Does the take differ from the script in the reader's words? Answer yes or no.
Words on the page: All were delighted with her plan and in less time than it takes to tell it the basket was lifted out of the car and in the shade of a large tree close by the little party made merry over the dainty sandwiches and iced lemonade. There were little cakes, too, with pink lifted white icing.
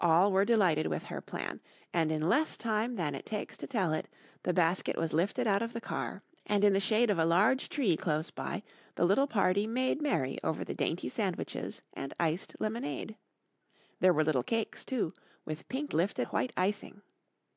no